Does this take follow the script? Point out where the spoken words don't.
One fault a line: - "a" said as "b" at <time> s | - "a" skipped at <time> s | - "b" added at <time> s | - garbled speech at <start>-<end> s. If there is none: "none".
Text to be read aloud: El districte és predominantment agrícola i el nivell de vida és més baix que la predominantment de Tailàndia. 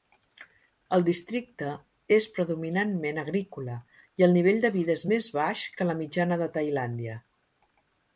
- "predominantment" said as "mitjana" at 6.0 s